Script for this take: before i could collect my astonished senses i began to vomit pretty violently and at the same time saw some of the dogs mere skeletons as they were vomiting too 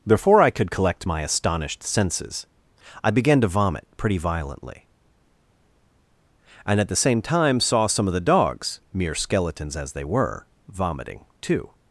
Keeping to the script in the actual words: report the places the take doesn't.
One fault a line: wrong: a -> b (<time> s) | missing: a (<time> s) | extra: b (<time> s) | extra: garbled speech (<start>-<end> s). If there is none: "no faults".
no faults